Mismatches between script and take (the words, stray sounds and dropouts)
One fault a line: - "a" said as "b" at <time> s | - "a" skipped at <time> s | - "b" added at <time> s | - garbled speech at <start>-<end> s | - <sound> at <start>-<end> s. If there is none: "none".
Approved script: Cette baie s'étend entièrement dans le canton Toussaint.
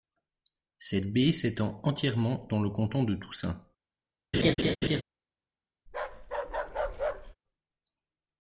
- "de" added at 3.0 s
- laugh at 4.3-5.0 s
- bark at 5.9-7.3 s